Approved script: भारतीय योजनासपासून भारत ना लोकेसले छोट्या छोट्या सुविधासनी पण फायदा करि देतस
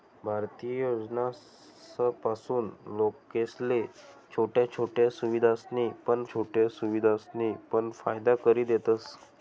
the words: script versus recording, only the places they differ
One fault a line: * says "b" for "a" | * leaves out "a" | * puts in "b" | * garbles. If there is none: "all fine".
* says "लोकेसले छोट्या छोट्या सुविधासनी पण" for "भारत ना लोकेसले छोट्या"